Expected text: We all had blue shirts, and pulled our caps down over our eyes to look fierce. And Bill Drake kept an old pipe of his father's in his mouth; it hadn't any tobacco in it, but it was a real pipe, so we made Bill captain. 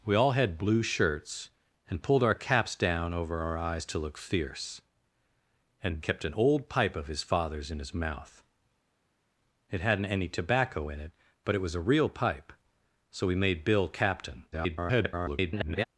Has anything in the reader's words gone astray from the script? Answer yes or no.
yes